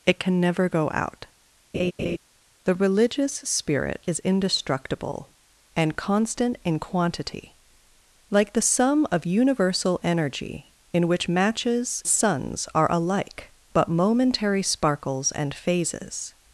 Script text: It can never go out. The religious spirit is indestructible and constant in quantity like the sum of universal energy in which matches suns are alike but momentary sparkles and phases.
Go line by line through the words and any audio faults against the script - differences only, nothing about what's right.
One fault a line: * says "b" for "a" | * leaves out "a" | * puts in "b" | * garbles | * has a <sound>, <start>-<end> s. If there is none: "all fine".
* has a laugh, 1.7-2.2 s